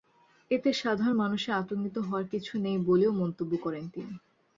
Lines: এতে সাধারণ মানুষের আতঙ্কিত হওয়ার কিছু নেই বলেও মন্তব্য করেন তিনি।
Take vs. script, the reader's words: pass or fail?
pass